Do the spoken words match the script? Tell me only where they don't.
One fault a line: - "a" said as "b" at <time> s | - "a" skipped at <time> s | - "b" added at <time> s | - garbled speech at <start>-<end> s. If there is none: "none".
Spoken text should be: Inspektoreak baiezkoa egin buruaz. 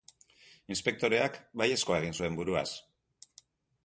- "zuen" added at 2.2 s